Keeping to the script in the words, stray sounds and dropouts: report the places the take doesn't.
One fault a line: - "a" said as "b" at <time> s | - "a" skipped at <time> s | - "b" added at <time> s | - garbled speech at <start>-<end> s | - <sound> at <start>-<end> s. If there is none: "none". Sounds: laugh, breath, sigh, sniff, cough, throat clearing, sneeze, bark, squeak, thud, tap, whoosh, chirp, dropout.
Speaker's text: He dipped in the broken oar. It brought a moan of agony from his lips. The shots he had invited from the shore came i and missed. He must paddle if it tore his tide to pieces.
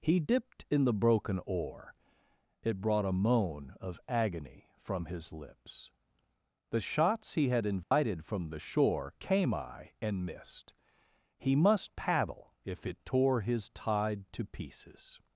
- dropout at 7.8-7.9 s